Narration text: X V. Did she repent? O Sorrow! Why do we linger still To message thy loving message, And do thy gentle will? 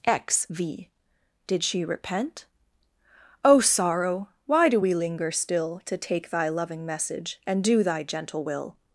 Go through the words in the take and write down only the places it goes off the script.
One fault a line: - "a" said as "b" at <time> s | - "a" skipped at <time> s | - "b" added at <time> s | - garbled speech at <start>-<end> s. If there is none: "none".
- "message" said as "take" at 6.0 s